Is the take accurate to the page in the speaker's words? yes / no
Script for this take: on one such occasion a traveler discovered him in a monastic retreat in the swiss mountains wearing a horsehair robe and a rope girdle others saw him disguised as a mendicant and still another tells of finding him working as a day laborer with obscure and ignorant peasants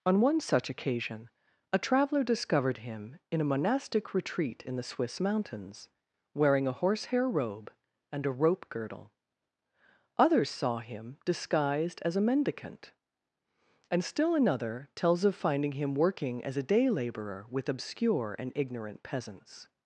yes